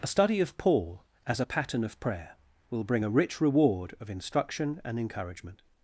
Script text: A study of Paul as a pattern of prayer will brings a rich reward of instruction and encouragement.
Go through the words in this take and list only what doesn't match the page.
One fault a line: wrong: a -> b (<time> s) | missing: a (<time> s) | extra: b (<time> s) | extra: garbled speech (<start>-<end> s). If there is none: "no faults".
wrong: brings -> bring (2.8 s)